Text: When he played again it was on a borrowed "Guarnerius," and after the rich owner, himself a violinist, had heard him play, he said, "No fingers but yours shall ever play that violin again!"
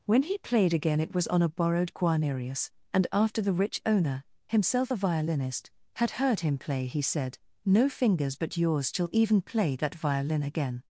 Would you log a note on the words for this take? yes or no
yes